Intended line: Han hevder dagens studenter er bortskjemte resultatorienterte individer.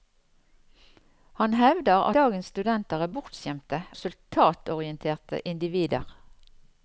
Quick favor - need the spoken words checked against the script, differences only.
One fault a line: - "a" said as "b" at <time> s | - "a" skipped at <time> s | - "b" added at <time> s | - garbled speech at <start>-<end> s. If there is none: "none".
none